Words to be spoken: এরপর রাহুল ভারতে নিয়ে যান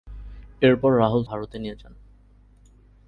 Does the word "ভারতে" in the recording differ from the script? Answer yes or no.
no